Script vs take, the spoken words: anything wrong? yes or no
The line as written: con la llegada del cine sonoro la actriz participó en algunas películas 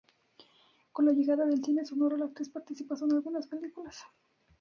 no